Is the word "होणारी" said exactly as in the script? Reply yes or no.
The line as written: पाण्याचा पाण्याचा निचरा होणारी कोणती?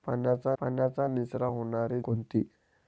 yes